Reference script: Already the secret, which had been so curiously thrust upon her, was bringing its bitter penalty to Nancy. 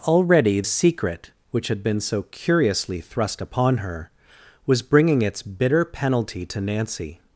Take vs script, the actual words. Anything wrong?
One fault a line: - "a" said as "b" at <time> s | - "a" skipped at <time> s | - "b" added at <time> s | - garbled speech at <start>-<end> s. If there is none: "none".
- "the" skipped at 0.6 s